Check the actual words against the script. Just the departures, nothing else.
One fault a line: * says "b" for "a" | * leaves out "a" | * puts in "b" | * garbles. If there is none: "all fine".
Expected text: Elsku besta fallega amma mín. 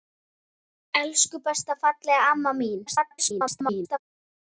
* garbles